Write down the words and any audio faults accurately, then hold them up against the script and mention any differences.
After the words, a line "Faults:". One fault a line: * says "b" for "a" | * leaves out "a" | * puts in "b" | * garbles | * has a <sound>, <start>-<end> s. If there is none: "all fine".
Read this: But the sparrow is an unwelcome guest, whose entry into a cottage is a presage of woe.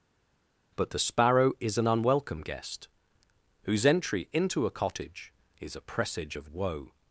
But the sparrow is an unwelcome guest, whose entry into a cottage is a presage of woe.
Faults:
all fine